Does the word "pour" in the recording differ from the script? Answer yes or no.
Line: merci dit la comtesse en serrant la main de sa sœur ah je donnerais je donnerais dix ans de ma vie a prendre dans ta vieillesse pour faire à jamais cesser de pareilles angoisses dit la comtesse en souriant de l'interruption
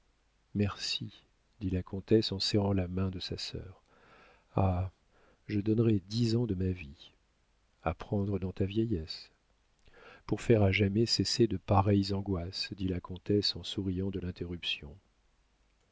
no